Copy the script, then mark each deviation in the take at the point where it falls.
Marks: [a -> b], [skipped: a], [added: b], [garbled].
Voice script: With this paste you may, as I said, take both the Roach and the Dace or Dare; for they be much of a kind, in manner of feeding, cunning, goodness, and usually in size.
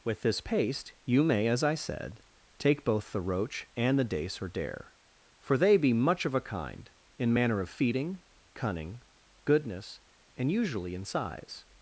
With this paste you may, as I said, take both the Roach and the Dace or Dare; for they be much of a kind, in manner of feeding, cunning, goodness, and usually in size.